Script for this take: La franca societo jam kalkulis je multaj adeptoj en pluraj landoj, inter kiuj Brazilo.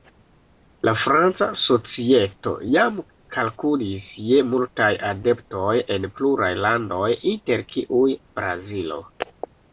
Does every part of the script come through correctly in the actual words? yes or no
yes